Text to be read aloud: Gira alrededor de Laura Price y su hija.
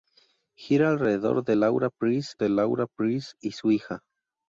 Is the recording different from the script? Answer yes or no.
yes